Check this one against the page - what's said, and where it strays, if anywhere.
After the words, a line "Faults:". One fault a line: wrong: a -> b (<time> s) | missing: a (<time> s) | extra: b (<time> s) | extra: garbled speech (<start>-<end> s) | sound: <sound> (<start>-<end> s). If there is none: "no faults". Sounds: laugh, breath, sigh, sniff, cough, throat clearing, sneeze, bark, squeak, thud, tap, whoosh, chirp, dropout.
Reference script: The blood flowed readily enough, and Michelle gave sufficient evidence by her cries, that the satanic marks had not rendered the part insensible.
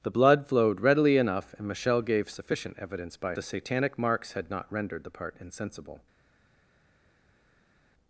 The blood flowed readily enough, and Michelle gave sufficient evidence by the satanic marks had not rendered the part insensible.
Faults:
missing: her cries that (3.4 s)